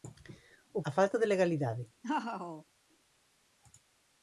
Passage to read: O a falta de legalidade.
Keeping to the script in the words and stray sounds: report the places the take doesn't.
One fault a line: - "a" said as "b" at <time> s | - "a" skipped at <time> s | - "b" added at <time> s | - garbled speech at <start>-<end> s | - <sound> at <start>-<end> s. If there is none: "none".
- laugh at 2.0-2.6 s